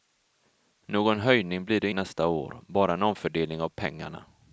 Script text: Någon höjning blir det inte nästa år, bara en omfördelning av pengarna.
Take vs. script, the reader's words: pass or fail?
fail